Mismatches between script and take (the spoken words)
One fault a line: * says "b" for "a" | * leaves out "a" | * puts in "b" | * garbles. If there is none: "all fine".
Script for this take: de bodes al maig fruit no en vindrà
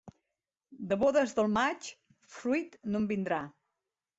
* says "del" for "al"